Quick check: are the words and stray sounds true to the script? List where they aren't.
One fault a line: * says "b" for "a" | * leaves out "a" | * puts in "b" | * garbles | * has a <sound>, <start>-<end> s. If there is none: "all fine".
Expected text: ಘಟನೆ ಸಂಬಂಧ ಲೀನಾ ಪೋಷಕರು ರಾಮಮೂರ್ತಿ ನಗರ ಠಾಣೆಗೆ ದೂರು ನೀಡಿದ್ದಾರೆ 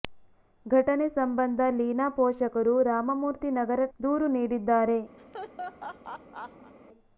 * leaves out "ಠಾಣೆಗೆ"
* has a laugh, 5.2-6.7 s